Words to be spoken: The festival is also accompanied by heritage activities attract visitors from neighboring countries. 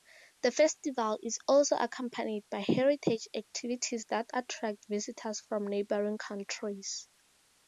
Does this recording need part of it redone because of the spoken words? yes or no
yes